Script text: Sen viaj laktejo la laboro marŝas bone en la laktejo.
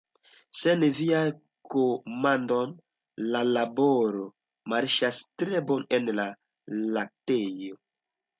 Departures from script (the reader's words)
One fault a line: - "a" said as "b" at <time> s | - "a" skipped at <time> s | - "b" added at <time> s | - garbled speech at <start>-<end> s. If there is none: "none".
- "laktejo" said as "komandoj" at 1.7 s
- "tre" added at 5.4 s